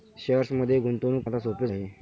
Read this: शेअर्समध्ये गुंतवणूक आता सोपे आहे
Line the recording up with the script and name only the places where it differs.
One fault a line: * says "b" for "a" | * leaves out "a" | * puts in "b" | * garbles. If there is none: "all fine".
all fine